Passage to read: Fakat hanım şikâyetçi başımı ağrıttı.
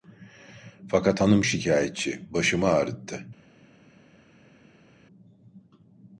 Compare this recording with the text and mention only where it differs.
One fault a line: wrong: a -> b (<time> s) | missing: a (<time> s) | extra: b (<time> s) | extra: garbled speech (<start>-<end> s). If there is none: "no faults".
no faults